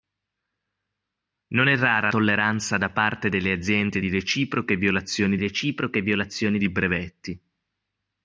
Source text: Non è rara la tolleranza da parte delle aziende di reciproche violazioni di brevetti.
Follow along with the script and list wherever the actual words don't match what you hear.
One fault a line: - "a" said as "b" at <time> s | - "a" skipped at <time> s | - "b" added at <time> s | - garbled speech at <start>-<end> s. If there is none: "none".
- "la" skipped at 2.1 s
- "reciproche violazioni" added at 5.4 s